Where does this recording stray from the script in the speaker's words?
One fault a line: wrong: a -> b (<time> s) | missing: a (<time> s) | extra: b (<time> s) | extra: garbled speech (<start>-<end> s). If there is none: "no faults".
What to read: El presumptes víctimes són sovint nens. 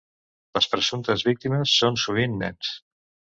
wrong: El -> Les (0.6 s)